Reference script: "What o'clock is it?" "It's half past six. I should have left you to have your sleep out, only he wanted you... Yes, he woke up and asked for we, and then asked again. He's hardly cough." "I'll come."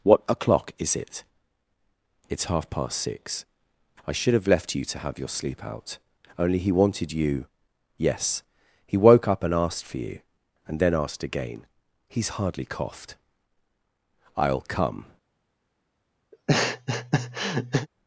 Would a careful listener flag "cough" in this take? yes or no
yes